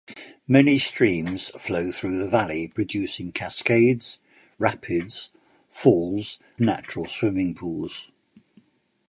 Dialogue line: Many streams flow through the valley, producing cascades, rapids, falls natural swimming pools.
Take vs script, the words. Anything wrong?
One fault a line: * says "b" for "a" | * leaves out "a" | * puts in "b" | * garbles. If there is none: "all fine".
all fine